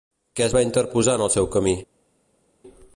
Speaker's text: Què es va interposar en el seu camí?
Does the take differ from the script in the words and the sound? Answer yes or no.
no